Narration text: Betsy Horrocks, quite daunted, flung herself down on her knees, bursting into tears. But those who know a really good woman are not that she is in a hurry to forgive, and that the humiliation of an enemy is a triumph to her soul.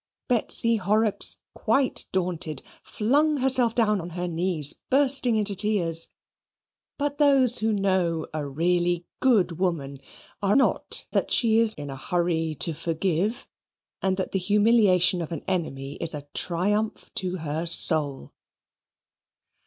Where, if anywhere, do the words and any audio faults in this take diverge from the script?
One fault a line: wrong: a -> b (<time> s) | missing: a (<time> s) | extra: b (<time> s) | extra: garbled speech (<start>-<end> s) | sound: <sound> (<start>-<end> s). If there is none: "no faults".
no faults